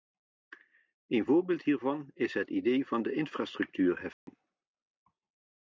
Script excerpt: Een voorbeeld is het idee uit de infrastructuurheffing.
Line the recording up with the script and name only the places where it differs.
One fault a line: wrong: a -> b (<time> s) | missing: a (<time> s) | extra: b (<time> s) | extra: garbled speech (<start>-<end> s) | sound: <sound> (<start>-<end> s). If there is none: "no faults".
extra: hiervan (1.6 s)
wrong: uit -> van (2.9 s)
sound: dropout (4.1-4.3 s)